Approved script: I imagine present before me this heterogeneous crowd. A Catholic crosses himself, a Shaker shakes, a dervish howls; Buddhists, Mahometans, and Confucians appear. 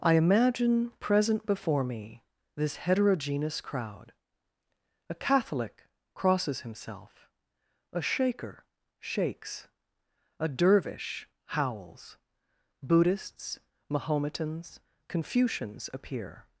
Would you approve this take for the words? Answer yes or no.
no